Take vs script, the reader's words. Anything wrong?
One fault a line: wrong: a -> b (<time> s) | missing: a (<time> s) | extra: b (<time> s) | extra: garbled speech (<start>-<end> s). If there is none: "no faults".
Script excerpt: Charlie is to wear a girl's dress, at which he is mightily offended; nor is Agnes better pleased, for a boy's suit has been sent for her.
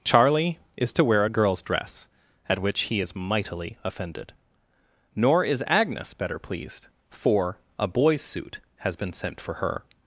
no faults